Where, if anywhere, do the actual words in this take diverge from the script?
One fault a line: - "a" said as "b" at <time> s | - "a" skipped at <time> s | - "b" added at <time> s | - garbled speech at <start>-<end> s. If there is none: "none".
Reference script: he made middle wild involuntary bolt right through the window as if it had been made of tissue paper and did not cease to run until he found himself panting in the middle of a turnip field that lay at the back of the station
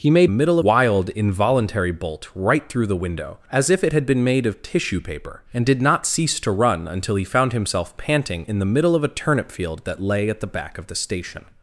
none